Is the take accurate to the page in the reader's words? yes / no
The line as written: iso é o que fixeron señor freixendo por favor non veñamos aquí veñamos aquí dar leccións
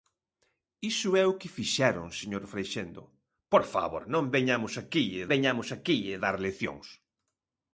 yes